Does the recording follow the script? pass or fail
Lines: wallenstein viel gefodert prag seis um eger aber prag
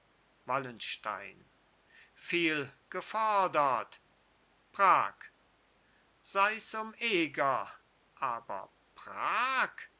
pass